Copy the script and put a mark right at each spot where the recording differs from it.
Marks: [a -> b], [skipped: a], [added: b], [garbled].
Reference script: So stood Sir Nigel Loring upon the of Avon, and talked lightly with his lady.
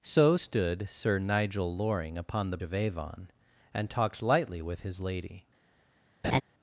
So stood Sir Nigel Loring upon the of Avon, and talked lightly with his lady.